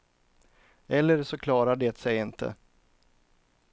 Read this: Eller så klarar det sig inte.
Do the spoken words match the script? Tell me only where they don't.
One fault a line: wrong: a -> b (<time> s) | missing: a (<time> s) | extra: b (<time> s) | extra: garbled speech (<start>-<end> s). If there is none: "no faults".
no faults